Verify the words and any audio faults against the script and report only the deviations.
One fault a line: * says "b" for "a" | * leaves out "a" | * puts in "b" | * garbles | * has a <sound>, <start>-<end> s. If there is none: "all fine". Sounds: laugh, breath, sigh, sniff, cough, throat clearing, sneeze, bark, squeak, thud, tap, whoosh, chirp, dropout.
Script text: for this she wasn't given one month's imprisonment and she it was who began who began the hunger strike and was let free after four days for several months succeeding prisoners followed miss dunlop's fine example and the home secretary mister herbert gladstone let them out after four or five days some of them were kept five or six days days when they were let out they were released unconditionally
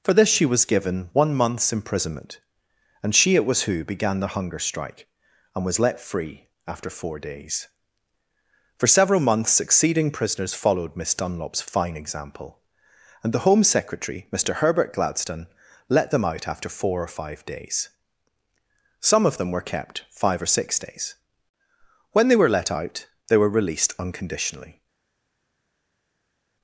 * says "was" for "wasn't"
* leaves out "who began"
* leaves out "days"